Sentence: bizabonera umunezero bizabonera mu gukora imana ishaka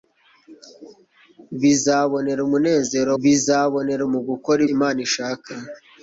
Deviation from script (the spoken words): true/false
false